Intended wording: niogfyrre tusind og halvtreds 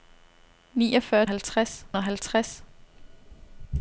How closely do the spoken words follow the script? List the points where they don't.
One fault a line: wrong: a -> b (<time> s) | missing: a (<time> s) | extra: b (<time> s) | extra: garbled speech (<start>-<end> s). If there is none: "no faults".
wrong: tusind -> halvtreds (1.3 s)